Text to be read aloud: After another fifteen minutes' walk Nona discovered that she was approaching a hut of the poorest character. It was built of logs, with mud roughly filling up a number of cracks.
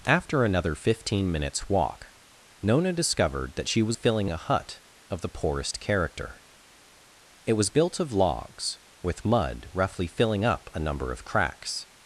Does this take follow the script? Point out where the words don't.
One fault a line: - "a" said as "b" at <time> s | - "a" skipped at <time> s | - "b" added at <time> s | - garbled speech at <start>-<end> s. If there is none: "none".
- "approaching" said as "filling" at 3.9 s